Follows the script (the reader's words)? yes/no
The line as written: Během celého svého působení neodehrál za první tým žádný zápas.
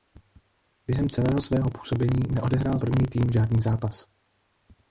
no